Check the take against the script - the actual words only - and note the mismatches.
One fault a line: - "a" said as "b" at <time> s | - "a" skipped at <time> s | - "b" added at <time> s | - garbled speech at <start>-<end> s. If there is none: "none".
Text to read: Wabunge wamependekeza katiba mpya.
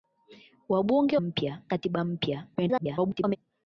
- "wamependekeza" said as "mpya" at 1.2 s
- garbled speech at 2.6-3.4 s